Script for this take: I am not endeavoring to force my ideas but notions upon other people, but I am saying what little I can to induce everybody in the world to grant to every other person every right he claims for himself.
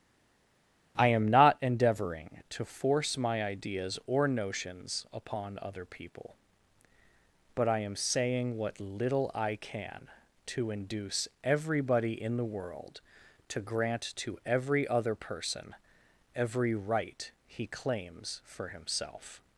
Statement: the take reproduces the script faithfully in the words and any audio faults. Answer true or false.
false